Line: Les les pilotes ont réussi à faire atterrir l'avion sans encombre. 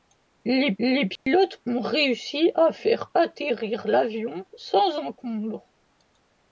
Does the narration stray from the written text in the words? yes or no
no